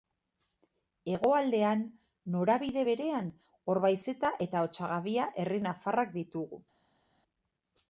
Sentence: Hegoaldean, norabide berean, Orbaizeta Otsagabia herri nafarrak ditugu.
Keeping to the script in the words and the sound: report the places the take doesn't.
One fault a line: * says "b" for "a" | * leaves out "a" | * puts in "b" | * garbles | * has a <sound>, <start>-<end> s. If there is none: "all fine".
* puts in "eta"